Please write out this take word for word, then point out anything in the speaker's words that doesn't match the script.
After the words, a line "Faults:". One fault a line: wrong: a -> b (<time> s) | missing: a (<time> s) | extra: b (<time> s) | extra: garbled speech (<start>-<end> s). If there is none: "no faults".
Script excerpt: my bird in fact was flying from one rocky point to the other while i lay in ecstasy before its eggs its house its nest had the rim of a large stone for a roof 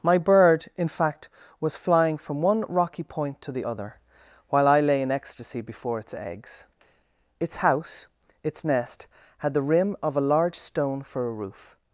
my bird in fact was flying from one rocky point to the other while i lay in ecstasy before its eggs its house its nest had the rim of a large stone for a roof
Faults:
no faults